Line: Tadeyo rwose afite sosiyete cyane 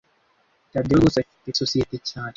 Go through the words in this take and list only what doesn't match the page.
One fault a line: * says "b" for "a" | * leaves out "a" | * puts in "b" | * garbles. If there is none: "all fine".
all fine